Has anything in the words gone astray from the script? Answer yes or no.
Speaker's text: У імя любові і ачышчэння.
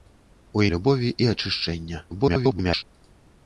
yes